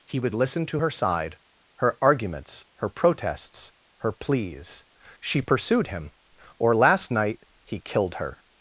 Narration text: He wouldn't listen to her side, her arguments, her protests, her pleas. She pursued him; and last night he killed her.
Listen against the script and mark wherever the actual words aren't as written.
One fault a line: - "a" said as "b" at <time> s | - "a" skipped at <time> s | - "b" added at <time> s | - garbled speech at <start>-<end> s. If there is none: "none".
- "wouldn't" said as "would" at 0.2 s
- "and" said as "or" at 6.6 s